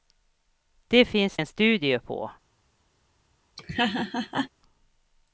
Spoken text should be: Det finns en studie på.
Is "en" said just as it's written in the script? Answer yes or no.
yes